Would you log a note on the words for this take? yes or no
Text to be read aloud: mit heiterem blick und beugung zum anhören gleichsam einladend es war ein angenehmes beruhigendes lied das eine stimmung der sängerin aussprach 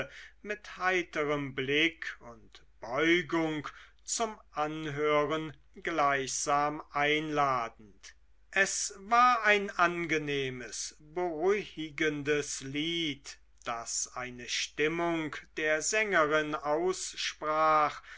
no